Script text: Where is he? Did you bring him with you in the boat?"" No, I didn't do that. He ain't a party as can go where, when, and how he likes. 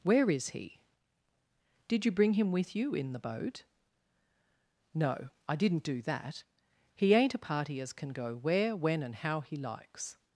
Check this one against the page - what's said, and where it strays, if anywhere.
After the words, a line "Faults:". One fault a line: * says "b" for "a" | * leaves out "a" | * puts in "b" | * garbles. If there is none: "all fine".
Where is he? Did you bring him with you in the boat?"" No, I didn't do that. He ain't a party as can go where, when, and how he likes.
Faults:
all fine